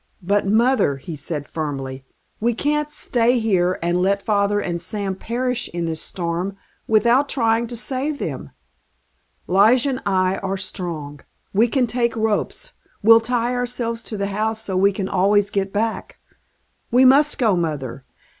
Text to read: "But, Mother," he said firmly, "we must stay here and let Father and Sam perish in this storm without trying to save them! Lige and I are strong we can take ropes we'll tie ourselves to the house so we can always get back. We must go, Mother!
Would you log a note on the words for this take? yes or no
yes